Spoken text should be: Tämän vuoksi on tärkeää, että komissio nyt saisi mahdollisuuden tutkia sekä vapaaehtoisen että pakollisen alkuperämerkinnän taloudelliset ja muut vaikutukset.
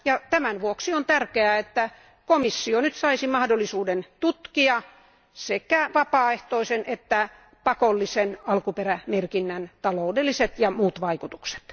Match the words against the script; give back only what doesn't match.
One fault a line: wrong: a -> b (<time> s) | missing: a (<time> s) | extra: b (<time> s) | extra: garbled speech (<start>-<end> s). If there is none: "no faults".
no faults